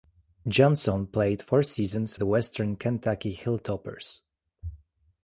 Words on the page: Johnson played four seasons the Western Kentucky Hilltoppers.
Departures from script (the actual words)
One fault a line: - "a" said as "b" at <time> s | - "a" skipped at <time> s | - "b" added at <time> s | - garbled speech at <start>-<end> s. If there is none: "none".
none